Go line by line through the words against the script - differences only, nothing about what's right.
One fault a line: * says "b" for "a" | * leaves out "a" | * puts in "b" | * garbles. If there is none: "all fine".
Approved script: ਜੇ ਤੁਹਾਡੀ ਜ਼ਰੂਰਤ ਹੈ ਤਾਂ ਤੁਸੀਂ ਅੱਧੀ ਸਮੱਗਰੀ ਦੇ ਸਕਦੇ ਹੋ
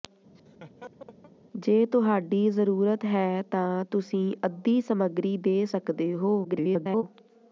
* garbles